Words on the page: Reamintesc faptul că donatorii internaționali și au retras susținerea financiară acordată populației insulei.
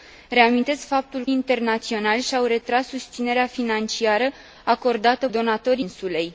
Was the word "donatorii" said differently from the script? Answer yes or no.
yes